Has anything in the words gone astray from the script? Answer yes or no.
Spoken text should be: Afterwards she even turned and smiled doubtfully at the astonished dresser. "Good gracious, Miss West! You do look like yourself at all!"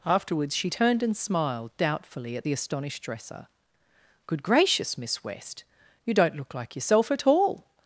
yes